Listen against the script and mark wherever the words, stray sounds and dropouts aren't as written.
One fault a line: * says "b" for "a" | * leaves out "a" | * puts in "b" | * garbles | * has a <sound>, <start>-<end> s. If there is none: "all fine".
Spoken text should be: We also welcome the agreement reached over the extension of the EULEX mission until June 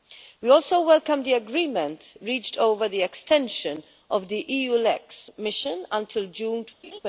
* has a laugh, 6.8-7.0 s